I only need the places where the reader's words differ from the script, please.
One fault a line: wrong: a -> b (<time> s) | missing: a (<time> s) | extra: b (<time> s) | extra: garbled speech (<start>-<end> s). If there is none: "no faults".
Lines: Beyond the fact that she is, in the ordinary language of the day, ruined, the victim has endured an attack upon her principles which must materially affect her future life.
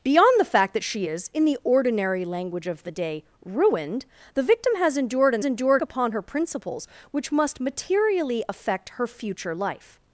wrong: attack -> endured (5.4 s)